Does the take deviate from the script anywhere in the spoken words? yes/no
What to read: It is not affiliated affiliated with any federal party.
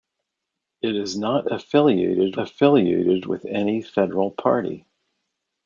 no